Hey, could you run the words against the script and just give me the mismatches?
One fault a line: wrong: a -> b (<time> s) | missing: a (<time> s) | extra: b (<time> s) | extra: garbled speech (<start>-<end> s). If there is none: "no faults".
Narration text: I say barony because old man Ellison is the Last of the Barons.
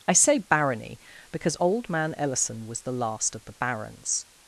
wrong: is -> was (2.7 s)